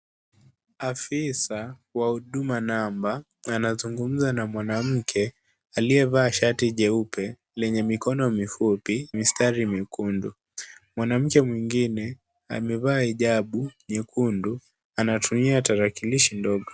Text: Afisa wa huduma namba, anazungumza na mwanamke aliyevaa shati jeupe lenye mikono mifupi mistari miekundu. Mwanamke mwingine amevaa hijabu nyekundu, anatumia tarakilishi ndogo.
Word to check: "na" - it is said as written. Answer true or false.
true